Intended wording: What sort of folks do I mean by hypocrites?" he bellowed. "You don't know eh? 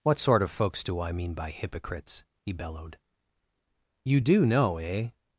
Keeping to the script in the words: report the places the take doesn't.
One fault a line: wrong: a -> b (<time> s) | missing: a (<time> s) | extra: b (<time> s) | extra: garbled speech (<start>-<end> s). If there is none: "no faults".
wrong: don't -> do (4.2 s)